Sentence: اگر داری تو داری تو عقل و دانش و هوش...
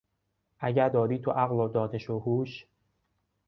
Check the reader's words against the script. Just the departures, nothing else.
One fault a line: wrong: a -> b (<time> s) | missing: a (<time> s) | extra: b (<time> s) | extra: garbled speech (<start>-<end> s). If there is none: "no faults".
missing: داری تو (1.3 s)